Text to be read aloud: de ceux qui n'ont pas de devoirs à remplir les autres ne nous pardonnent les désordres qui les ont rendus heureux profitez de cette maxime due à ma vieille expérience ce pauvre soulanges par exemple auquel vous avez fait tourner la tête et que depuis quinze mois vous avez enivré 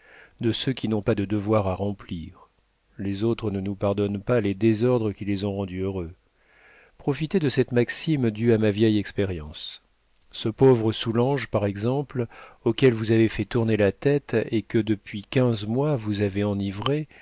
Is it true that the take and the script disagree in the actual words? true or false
true